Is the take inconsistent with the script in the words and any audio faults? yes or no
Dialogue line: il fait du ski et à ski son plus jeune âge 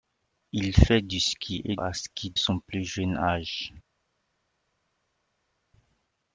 no